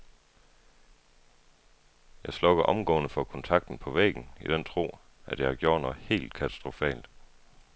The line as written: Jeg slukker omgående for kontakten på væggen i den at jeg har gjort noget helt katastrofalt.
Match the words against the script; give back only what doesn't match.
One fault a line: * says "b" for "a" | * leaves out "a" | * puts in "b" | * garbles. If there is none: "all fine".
* puts in "tro"